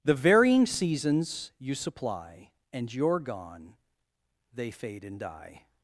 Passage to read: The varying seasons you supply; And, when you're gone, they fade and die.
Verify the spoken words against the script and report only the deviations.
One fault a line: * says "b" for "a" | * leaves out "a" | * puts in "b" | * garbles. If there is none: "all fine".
* leaves out "when"